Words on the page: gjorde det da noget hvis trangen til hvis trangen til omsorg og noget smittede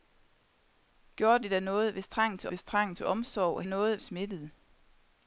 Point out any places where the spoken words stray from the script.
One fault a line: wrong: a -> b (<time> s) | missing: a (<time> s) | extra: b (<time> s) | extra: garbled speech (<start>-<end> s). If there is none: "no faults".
no faults